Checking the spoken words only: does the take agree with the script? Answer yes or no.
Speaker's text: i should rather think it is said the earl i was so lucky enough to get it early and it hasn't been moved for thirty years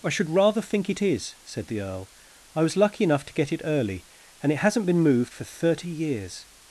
no